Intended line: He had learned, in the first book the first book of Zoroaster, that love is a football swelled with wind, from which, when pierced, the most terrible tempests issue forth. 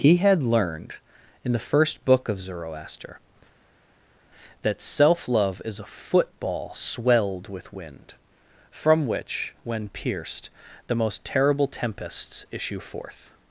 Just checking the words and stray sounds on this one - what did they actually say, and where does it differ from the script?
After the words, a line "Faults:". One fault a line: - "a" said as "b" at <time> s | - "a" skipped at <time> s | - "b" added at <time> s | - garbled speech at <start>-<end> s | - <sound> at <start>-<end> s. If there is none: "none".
He had learned, in the first book of Zoroaster, that self love is a football swelled with wind, from which, when pierced, the most terrible tempests issue forth.
Faults:
- "the first book" skipped at 2.3 s
- "self" added at 4.8 s